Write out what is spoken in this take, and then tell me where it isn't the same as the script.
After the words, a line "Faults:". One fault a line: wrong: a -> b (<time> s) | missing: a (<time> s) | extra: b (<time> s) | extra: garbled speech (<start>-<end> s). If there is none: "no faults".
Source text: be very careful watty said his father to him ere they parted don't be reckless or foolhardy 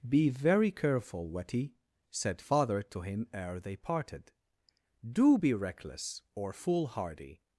be very careful watty said father to him ere they parted do be reckless or foolhardy
Faults:
missing: his (2.4 s)
wrong: don't -> do (5.1 s)